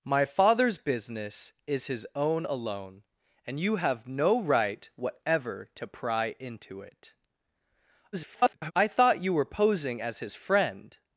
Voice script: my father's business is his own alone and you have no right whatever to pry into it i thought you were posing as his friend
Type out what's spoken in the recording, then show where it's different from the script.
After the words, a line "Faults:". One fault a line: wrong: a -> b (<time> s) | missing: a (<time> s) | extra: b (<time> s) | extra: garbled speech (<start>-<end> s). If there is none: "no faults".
my father's business is his own alone and you have no right whatever to pry into it [garbled] i thought you were posing as his friend
Faults:
extra: garbled speech (8.1-8.7 s)